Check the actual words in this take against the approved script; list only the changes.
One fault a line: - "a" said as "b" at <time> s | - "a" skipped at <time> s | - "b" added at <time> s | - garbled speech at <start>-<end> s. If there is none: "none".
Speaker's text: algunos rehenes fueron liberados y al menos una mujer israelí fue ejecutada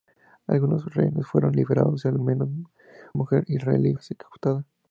- "una" skipped at 2.5 s
- "fue" skipped at 3.9 s